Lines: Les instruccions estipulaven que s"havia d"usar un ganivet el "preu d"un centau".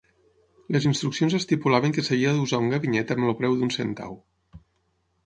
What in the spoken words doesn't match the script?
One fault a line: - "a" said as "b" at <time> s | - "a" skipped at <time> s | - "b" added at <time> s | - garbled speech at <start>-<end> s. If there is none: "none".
- "amb" added at 3.2 s